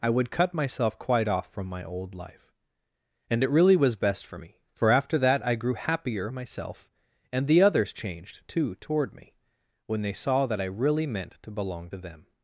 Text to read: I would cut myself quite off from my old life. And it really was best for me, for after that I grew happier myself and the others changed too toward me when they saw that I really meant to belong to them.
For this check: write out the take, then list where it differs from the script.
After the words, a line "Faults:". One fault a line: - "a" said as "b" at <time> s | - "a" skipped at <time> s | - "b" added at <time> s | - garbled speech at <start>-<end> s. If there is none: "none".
I would cut myself quite off from my old life. And it really was best for me, for after that I grew happier myself and the others changed too toward me when they saw that I really meant to belong to them.
Faults:
none